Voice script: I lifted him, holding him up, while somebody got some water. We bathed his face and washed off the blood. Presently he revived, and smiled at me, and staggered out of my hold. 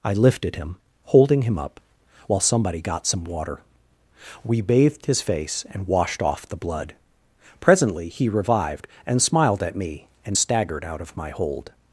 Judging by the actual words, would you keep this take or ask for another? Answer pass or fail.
pass